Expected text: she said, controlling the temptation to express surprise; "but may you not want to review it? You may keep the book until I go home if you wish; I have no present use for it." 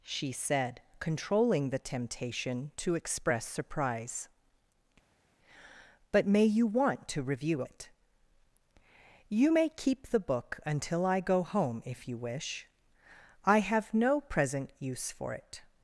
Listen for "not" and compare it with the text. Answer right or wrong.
wrong